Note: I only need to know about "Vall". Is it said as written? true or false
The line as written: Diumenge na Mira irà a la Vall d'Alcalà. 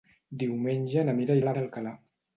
false